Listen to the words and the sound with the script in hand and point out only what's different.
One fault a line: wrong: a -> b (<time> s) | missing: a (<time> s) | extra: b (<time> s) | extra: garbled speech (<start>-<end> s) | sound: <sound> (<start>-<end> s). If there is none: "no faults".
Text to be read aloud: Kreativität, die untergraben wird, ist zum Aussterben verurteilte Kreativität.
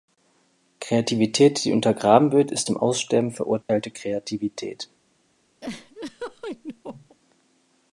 sound: dropout (3.6-3.7 s)
sound: laugh (5.6-7.2 s)